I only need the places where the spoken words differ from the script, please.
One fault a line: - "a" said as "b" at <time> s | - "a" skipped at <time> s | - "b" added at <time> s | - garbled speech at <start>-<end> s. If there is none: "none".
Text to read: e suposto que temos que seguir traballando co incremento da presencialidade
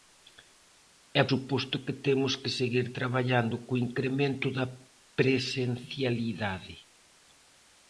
none